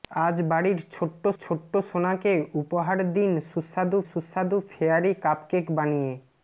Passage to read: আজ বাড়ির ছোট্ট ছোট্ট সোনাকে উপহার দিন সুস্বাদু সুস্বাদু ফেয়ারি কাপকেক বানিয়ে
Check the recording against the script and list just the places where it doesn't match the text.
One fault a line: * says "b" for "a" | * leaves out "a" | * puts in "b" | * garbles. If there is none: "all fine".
all fine